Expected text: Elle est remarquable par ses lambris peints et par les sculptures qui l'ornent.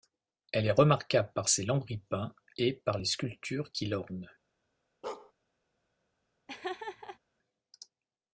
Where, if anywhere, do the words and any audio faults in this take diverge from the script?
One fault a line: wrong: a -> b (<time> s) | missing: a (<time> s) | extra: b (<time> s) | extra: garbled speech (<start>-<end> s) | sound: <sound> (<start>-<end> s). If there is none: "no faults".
sound: bark (5.0-5.3 s)
sound: laugh (6.5-7.2 s)